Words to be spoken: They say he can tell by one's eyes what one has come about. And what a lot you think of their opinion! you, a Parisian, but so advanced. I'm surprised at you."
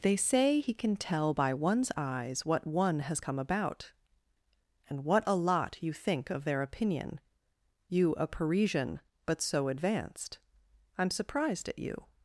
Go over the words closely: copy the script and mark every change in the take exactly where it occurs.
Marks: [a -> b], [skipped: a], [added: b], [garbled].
They say he can tell by one's eyes what one has come about. And what a lot you think of their opinion! you, a Parisian, but so advanced. I'm surprised at you."